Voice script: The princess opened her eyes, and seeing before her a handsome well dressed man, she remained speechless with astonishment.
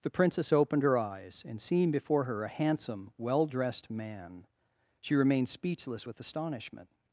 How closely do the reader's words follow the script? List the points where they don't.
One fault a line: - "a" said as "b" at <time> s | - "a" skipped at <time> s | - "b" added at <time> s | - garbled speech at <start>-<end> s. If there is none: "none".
none